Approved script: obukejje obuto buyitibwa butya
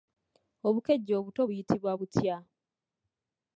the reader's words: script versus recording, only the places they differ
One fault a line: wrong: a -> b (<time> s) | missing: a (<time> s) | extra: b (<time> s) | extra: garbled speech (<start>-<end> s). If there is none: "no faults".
no faults